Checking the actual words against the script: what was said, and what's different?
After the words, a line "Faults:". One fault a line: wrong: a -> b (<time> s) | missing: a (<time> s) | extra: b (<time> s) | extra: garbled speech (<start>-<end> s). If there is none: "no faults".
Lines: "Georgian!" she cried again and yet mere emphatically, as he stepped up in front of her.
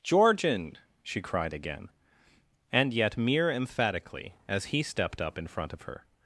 "Georgian!" she cried again and yet mere emphatically, as he stepped up in front of her.
Faults:
no faults